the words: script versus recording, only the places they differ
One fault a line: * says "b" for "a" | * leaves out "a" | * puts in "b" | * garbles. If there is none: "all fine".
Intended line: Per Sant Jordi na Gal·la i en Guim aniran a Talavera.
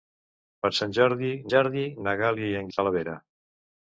* puts in "Jordi"
* leaves out "Guim aniran"